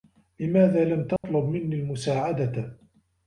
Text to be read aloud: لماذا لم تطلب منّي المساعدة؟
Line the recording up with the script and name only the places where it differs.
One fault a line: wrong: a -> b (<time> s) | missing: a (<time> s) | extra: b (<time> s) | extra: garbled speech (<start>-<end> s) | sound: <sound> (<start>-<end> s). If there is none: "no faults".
sound: dropout (1.2-1.2 s)